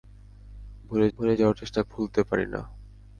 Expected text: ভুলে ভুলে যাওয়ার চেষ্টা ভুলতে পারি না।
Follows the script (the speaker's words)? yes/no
yes